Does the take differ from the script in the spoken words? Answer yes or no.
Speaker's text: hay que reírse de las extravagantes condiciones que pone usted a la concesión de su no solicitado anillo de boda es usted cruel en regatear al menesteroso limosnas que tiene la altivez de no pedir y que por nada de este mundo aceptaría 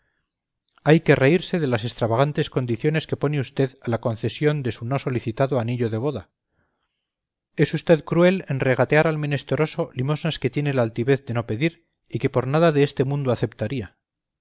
no